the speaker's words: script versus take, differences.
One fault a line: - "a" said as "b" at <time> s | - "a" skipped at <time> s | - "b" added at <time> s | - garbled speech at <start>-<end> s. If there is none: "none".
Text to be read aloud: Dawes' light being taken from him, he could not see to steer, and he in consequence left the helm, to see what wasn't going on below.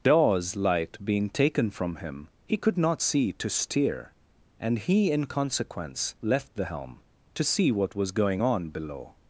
- "wasn't" said as "was" at 7.9 s